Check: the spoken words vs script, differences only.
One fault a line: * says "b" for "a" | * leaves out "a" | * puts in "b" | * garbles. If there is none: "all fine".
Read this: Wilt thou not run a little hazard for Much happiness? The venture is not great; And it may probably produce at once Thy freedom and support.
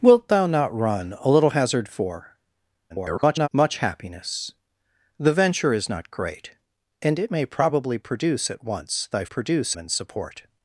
* garbles
* says "produce" for "freedom"